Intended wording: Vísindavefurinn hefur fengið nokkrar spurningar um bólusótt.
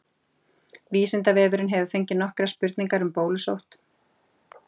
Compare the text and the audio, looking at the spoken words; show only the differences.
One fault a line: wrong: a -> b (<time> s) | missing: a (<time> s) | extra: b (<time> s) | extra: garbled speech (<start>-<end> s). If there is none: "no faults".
no faults